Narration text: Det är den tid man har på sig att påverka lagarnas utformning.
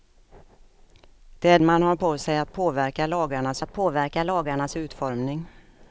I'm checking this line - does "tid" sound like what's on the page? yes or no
no